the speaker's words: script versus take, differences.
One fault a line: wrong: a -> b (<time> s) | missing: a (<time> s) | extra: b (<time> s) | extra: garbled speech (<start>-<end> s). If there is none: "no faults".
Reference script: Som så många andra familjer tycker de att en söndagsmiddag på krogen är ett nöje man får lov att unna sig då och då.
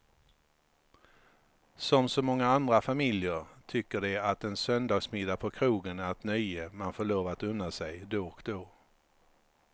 no faults